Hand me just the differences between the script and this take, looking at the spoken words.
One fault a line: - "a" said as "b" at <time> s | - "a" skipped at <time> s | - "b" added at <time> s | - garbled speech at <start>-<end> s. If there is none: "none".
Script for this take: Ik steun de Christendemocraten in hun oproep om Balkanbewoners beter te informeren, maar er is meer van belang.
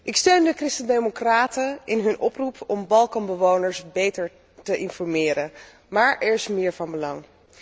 none